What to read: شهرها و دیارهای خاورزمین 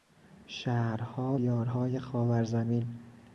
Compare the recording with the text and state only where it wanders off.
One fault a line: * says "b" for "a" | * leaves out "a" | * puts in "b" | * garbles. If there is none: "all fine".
* leaves out "و"